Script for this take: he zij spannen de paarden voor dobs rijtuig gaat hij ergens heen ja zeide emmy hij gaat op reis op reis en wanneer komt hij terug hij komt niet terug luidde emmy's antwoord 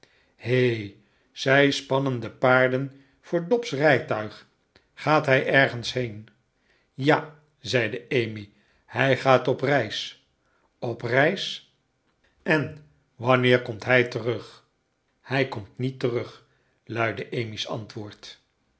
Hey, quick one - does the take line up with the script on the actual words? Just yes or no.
yes